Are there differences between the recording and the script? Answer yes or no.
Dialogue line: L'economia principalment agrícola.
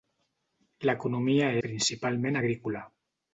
no